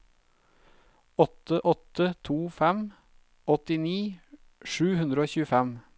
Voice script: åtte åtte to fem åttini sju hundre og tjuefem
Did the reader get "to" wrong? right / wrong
right